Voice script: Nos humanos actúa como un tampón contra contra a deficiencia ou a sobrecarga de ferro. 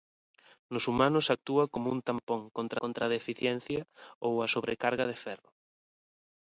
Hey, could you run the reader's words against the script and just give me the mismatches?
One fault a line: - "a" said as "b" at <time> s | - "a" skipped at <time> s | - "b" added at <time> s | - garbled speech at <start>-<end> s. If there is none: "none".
none